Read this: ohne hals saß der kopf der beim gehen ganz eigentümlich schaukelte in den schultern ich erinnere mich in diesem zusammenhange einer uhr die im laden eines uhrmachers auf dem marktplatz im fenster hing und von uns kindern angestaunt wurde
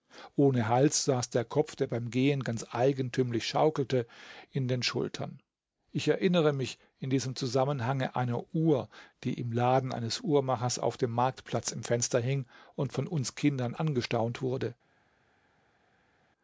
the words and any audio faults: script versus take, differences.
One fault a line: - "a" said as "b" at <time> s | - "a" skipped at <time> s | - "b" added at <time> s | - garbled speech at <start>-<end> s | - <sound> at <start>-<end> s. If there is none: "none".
none